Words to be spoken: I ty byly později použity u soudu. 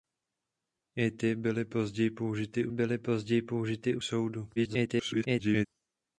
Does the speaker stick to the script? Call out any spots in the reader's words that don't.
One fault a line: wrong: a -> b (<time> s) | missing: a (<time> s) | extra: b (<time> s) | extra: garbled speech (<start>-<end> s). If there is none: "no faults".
extra: byly později použity (2.7 s)
extra: garbled speech (4.6-5.7 s)